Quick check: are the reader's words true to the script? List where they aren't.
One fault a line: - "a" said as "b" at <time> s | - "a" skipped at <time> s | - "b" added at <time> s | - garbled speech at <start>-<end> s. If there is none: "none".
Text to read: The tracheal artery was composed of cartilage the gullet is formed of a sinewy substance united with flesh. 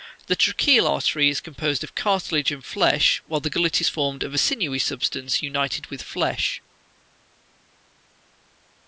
- "was" said as "is" at 1.3 s
- "and flesh while" added at 2.5 s